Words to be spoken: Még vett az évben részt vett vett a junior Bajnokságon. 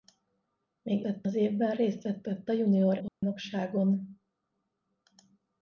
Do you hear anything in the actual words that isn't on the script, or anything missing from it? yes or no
no